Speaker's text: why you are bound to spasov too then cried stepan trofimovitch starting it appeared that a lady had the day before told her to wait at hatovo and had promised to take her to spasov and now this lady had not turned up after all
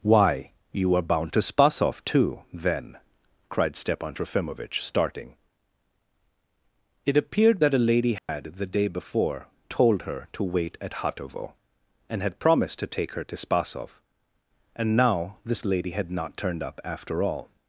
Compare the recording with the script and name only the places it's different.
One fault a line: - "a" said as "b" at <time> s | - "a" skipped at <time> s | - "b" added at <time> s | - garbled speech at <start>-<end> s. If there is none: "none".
none